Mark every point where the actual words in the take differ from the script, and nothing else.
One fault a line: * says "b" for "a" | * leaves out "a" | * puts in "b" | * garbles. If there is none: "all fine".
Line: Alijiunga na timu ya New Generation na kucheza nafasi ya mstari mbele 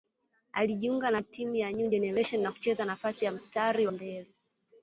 all fine